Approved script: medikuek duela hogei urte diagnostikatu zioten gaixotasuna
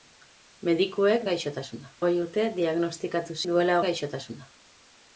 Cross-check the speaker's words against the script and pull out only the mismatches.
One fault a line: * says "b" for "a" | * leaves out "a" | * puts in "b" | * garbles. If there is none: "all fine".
* says "gaixotasuna" for "duela"
* says "duela" for "zioten"